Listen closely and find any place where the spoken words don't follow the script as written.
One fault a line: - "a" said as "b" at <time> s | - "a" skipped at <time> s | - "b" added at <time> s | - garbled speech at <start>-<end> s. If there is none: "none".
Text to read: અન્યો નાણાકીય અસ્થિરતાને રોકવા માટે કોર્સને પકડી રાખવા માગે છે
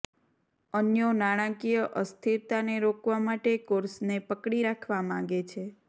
none